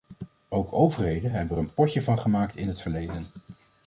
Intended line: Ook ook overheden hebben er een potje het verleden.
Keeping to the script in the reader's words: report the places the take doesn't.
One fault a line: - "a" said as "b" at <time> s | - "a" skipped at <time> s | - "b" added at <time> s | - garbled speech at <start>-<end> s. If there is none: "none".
- "ook" skipped at 0.7 s
- "van gemaakt in" added at 2.0 s